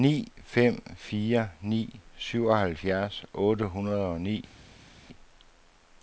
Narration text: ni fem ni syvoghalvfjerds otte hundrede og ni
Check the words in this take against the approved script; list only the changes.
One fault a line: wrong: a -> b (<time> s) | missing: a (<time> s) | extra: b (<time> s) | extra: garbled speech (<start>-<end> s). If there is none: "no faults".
extra: fire (1.0 s)